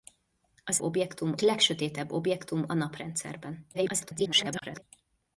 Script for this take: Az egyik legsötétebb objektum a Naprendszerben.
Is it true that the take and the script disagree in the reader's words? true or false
true